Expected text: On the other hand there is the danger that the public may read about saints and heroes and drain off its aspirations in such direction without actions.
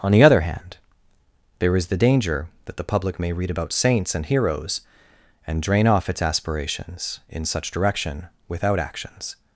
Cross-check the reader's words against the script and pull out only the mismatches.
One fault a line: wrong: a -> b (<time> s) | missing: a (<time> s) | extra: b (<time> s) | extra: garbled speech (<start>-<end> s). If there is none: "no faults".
no faults